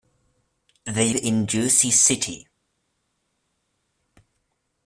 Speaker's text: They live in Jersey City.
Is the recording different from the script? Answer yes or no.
yes